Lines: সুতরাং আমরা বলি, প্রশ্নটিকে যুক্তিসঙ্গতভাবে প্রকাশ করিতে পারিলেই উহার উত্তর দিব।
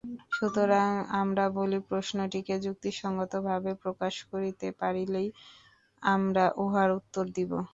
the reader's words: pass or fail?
fail